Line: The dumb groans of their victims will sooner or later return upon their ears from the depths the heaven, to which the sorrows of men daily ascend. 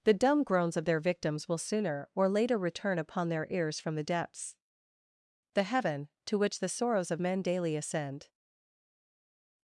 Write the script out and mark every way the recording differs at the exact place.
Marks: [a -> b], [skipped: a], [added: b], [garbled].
The dumb groans of their victims will sooner or later return upon their ears from the depths the heaven, to which the sorrows of men daily ascend.